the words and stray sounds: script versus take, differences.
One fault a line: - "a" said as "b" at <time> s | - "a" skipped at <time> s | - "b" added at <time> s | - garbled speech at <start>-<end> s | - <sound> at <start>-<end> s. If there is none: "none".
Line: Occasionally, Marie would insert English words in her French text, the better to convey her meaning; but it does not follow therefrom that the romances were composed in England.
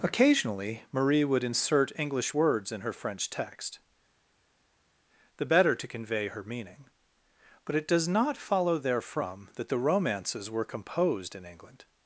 none